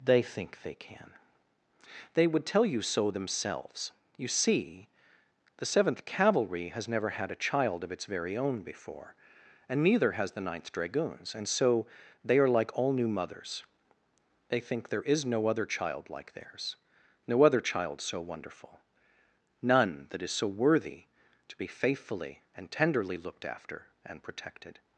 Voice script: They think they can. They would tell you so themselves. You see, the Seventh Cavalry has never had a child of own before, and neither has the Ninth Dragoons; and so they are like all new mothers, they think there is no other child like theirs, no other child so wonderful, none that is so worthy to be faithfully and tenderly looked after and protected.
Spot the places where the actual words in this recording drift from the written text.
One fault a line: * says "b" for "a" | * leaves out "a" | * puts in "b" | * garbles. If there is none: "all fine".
* puts in "its very"